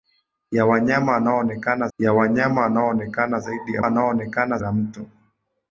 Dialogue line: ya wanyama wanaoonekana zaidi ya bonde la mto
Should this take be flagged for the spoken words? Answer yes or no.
yes